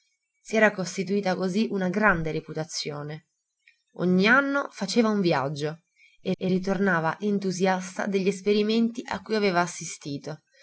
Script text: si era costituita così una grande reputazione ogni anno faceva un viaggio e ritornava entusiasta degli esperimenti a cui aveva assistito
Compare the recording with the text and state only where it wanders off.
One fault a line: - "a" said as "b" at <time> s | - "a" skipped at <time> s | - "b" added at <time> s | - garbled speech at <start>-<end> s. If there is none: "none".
- "e" added at 6.4 s